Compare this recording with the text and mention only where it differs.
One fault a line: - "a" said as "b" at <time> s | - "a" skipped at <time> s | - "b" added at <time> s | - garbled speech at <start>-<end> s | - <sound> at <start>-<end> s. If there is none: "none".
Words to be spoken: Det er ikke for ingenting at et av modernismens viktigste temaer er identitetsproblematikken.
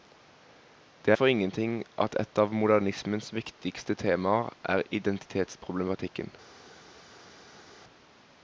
- "ikke" skipped at 1.2 s